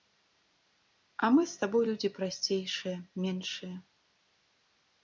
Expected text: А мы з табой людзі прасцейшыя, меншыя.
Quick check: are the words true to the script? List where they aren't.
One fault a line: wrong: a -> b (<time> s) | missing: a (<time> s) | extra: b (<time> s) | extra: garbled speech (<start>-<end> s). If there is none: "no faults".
no faults